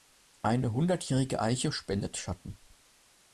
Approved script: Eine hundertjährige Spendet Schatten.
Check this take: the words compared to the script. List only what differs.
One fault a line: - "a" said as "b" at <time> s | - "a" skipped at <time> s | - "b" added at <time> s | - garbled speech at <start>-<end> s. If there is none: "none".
- "Eiche" added at 1.4 s